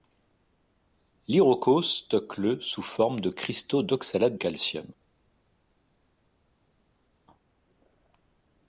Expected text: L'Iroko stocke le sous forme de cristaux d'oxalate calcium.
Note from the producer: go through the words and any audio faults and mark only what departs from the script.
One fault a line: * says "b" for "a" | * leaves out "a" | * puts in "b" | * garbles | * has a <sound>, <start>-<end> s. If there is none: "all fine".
all fine